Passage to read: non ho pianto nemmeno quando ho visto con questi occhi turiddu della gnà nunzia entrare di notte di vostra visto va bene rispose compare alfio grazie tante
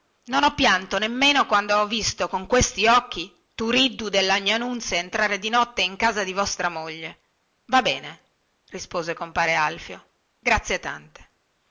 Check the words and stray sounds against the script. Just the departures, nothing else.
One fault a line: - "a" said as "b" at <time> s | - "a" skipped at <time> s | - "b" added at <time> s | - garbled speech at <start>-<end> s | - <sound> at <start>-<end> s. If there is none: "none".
- "in casa" added at 5.8 s
- "visto" said as "moglie" at 6.7 s